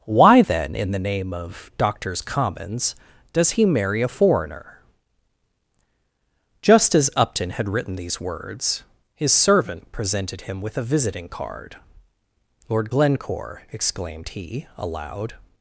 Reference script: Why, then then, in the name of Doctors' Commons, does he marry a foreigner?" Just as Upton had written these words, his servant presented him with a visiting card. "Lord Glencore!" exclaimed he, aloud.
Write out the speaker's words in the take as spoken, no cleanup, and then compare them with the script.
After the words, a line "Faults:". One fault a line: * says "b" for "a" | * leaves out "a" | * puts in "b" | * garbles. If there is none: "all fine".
Why, then, in the name of Doctors' Commons, does he marry a foreigner?" Just as Upton had written these words, his servant presented him with a visiting card. "Lord Glencore!" exclaimed he, aloud.
Faults:
* leaves out "then"